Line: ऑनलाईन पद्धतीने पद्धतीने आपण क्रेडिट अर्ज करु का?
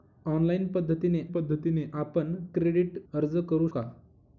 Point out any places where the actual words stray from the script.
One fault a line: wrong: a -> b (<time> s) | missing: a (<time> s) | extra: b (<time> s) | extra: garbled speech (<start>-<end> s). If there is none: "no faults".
no faults